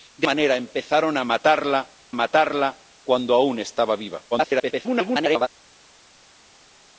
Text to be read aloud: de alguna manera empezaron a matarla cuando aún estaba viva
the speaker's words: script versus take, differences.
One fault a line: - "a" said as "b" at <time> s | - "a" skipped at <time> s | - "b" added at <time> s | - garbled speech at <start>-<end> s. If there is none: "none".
- "alguna" skipped at 0.3 s
- "matarla" added at 2.1 s
- garbled speech at 4.3-5.5 s